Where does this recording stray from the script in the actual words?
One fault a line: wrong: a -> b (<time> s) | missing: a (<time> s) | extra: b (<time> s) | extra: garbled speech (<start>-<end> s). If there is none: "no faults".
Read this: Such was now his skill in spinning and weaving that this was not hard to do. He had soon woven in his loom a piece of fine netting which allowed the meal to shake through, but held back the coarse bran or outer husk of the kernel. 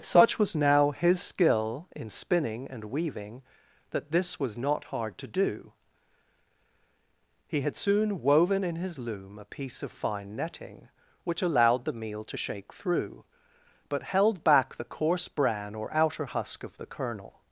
no faults